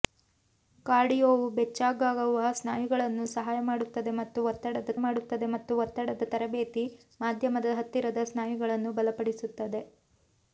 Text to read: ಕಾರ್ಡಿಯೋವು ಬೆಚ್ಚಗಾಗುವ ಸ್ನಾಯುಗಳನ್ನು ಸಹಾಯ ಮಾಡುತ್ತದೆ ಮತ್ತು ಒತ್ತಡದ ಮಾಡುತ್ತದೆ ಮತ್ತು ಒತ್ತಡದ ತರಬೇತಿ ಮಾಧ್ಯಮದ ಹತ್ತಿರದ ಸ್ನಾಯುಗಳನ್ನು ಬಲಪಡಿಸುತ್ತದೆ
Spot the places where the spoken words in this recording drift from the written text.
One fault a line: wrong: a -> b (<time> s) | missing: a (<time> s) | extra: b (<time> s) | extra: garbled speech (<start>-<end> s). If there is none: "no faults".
no faults